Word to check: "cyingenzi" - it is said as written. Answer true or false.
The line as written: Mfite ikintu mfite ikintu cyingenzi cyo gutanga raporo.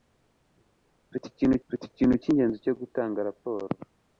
true